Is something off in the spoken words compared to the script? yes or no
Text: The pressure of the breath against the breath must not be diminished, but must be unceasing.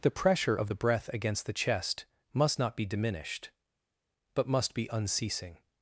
yes